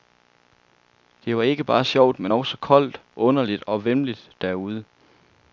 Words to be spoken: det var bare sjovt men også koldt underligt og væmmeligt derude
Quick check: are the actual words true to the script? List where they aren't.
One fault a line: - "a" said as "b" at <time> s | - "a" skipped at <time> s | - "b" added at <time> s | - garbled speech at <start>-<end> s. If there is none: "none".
- "ikke" added at 1.4 s